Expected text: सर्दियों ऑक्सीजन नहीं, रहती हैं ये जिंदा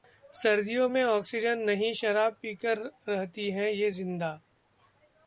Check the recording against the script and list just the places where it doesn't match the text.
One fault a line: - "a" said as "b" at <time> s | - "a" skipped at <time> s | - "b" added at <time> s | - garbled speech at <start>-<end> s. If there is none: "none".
- "में" added at 0.9 s
- "शराब पीकर" added at 1.9 s